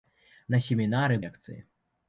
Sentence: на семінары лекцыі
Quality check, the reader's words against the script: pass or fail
pass